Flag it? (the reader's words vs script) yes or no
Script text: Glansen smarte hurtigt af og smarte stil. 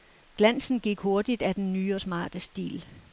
yes